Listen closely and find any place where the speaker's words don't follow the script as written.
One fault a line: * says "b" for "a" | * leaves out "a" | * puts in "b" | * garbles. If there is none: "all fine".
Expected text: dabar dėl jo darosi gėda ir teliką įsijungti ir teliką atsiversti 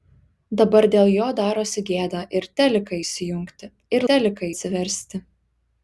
all fine